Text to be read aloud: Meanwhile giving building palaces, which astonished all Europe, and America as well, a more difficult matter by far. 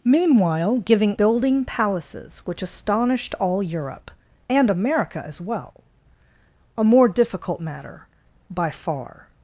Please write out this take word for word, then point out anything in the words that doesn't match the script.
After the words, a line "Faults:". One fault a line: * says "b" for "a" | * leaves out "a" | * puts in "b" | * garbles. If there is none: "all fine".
Meanwhile giving building palaces, which astonished all Europe, and America as well, a more difficult matter by far.
Faults:
all fine